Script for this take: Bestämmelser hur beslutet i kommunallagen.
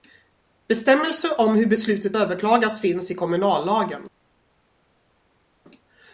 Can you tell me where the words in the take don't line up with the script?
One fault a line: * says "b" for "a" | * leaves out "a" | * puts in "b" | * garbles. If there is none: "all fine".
* puts in "om"
* puts in "överklagas finns"